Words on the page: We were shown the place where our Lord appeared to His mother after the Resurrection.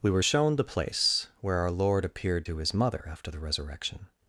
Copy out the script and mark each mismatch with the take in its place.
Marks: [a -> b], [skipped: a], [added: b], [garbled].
We were shown the place where our Lord appeared to His mother after the Resurrection.